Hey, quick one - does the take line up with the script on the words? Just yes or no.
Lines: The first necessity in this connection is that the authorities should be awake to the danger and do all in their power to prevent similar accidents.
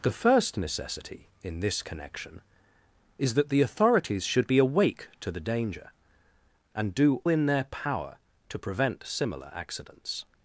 no